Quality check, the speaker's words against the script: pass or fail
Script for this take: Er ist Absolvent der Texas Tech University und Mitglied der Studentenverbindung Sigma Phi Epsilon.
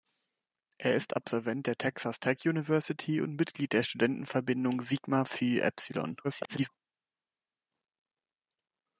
fail